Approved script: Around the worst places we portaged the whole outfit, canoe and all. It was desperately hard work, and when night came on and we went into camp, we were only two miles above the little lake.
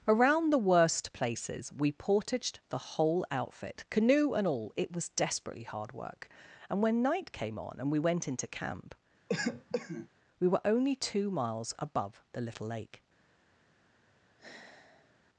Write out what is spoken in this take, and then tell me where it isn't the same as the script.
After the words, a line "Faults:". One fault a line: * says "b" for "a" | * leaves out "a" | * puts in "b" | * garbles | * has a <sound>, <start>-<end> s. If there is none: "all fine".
Around the worst places we portaged the whole outfit, canoe and all. It was desperately hard work, and when night came on and we went into camp, we were only two miles above the little lake.
Faults:
* has a cough, 9.3-10.1 s
* has a sigh, 14.4-15.2 s